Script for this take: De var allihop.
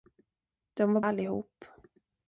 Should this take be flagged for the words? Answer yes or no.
no